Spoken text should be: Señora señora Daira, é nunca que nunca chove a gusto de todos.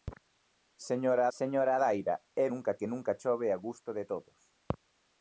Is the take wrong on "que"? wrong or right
right